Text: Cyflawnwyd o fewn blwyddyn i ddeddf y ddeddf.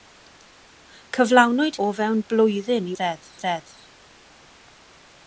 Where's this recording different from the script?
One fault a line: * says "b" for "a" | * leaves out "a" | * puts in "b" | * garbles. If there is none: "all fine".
all fine